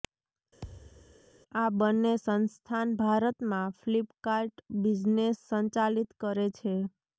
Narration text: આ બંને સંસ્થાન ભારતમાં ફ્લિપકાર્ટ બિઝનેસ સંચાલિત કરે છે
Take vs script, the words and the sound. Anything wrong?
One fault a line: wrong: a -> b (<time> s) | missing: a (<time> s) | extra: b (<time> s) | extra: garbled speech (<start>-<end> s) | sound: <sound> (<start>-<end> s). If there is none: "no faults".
sound: thud (0.6-1.2 s)